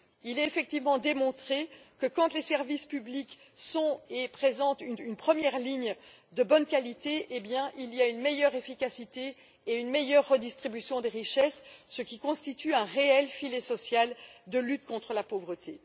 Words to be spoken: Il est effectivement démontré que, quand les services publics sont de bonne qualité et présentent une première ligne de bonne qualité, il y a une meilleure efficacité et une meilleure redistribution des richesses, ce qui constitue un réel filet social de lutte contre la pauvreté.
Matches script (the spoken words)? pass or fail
fail